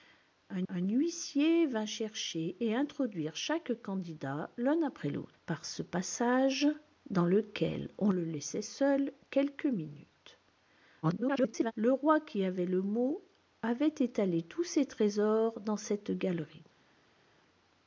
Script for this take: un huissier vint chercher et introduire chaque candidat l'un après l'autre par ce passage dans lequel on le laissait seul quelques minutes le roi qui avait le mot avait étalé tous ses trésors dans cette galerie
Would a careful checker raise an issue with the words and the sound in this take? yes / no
yes